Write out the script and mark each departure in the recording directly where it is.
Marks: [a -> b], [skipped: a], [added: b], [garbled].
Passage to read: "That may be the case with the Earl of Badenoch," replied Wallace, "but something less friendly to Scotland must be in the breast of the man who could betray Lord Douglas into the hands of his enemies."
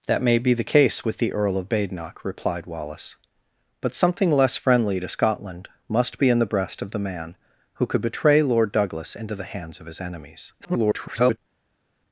"That may be the case with the Earl of Badenoch," replied Wallace, "but something less friendly to Scotland must be in the breast of the man who could betray Lord Douglas into the hands of his enemies." [garbled]